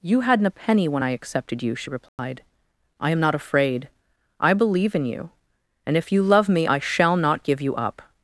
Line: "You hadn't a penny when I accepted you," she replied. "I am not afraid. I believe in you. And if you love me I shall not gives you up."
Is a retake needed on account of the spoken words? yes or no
yes